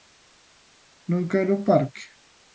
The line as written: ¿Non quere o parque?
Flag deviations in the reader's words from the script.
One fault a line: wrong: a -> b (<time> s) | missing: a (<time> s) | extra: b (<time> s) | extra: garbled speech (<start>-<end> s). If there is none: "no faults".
no faults